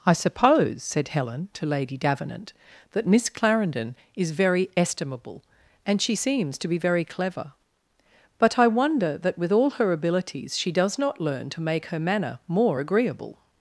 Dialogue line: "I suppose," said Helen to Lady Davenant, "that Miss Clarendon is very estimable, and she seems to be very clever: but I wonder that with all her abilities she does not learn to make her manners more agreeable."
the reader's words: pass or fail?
fail